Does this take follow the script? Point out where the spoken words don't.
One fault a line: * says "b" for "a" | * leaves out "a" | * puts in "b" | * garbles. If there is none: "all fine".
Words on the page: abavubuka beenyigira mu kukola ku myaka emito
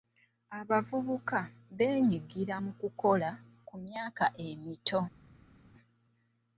all fine